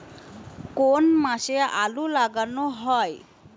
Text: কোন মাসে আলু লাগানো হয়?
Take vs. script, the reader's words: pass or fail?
pass